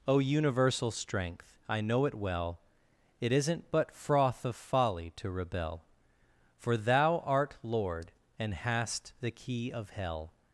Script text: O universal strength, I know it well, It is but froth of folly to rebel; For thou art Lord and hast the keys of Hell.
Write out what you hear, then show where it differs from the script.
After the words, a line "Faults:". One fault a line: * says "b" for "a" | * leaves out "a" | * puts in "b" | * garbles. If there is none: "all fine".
O universal strength, I know it well, It isn't but froth of folly to rebel; For thou art Lord and hast the key of Hell.
Faults:
* says "isn't" for "is"
* says "key" for "keys"